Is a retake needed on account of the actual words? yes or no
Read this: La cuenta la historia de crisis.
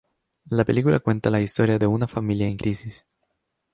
yes